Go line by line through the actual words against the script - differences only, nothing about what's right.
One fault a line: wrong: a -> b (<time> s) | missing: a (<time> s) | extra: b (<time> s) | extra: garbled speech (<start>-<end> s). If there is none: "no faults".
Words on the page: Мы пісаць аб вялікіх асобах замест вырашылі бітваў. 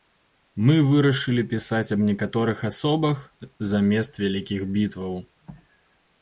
extra: вырашылі (0.9 s)
wrong: вялікіх -> некаторых (2.1 s)
wrong: вырашылі -> вялікіх (4.2 s)